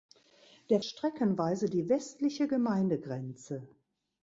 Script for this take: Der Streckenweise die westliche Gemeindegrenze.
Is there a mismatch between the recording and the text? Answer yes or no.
no